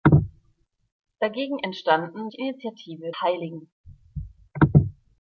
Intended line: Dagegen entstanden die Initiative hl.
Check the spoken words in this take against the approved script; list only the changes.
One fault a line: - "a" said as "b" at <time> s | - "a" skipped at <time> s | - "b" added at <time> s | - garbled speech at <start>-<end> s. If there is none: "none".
none